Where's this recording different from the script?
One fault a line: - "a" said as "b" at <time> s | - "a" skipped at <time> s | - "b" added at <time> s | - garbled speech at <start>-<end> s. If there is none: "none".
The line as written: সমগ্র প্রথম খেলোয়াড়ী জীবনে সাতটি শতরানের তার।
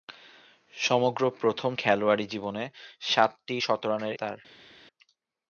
none